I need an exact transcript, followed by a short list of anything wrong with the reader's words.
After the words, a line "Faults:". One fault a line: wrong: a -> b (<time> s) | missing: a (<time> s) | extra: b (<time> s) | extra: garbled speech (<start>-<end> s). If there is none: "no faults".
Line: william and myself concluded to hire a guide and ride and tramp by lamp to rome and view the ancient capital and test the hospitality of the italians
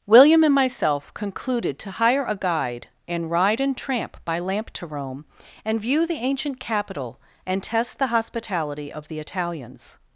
william and myself concluded to hire a guide and ride and tramp by lamp to rome and view the ancient capital and test the hospitality of the italians
Faults:
no faults